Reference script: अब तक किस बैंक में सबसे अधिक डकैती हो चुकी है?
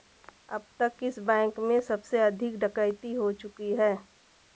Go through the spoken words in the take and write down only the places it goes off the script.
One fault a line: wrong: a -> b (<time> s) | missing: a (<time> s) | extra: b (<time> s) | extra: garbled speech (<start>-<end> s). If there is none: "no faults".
no faults